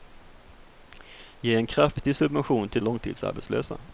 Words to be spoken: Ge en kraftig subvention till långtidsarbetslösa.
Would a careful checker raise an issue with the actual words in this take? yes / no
no